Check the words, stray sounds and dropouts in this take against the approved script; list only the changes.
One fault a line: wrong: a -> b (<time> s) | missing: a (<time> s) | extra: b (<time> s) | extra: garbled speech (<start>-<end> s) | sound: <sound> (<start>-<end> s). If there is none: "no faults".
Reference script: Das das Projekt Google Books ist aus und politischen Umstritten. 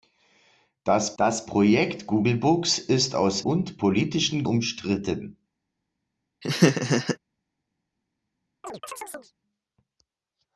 sound: laugh (6.4-7.2 s)
sound: chirp (8.6-9.3 s)